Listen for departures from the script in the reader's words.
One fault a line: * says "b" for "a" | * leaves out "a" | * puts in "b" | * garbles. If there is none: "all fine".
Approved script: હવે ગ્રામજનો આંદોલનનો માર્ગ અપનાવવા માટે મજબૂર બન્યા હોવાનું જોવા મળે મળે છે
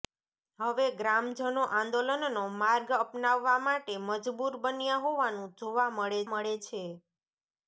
all fine